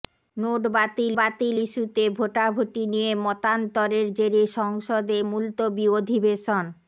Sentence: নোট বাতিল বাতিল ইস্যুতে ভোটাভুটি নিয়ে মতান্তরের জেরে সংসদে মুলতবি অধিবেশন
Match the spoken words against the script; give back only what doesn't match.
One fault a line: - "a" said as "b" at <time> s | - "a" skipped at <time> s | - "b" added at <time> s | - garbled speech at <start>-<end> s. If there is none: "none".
none